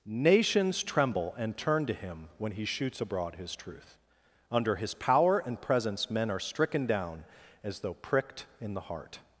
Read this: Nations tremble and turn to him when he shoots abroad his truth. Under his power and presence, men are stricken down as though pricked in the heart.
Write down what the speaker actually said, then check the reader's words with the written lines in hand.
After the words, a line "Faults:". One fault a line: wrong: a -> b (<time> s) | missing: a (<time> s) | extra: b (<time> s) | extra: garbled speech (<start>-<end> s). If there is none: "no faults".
Nations tremble and turn to him when he shoots abroad his truth. Under his power and presence, men are stricken down as though pricked in the heart.
Faults:
no faults